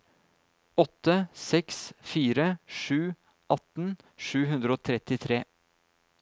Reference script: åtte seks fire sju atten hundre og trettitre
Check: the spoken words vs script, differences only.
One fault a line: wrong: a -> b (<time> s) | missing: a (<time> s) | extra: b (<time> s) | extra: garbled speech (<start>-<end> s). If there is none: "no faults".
extra: sju (4.3 s)